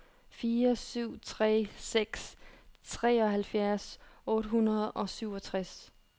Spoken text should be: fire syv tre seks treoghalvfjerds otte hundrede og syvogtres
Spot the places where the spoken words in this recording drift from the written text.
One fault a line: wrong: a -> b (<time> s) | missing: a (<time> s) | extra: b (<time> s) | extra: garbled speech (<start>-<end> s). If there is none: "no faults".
no faults